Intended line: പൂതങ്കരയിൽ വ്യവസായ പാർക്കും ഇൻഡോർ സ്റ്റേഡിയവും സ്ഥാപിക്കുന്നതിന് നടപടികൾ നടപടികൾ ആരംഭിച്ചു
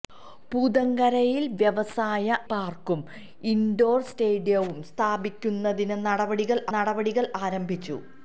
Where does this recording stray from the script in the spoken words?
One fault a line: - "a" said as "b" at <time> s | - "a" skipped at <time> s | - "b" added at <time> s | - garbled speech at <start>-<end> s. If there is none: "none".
none